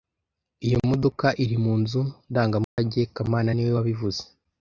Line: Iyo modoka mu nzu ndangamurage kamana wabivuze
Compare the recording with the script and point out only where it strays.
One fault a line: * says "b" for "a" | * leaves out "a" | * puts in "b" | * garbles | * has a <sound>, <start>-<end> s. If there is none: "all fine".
* puts in "iri"
* has a dropout, 2.6-2.8 s
* puts in "niwe"